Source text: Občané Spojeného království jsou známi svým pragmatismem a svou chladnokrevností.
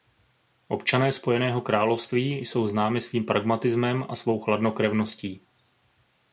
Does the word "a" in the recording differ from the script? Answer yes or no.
no